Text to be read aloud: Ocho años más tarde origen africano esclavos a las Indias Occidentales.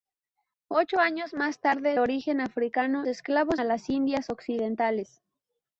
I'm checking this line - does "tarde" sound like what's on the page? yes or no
yes